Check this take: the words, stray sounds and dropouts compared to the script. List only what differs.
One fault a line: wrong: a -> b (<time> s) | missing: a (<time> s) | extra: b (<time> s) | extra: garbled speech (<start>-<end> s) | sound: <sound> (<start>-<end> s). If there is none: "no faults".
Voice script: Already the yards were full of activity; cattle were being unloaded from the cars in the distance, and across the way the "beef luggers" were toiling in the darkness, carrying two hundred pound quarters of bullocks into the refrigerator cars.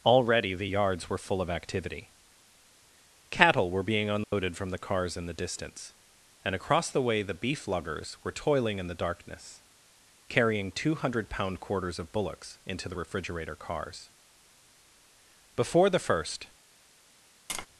sound: dropout (4.2-4.3 s)
extra: Before the first (15.6 s)
sound: tap (17.5-17.7 s)